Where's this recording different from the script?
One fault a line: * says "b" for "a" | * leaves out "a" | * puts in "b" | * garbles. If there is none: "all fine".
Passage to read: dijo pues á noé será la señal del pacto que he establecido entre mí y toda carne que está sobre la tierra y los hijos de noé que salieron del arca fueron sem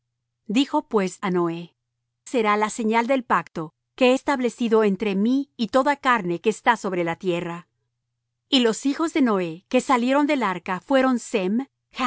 all fine